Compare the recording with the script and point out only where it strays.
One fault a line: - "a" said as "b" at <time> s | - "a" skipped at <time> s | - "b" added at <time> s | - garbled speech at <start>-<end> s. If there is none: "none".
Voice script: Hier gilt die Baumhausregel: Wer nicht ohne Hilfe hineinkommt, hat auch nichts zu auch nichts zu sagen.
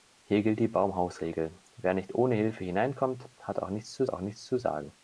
none